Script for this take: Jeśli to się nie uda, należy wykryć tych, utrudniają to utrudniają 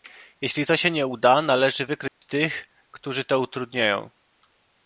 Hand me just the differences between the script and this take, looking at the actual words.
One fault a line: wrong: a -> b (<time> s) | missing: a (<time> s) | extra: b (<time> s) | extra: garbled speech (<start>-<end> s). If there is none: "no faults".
wrong: utrudniają -> którzy (2.9 s)